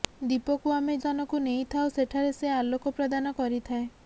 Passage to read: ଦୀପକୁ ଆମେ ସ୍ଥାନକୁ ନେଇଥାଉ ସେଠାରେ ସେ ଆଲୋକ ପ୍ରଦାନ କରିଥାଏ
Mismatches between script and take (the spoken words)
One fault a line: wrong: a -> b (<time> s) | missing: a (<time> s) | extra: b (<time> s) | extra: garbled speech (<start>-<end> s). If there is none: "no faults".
no faults